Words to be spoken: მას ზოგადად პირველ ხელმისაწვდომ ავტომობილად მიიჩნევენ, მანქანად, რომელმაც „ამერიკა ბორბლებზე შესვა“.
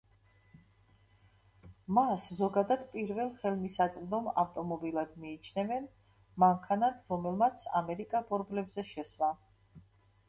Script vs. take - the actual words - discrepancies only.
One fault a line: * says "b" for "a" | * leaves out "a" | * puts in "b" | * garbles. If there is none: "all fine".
all fine